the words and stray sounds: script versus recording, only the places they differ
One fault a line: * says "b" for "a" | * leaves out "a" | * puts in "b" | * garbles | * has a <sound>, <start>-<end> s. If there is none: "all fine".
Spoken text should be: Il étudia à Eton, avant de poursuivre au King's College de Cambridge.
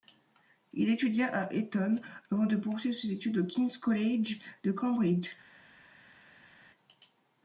* puts in "ses études"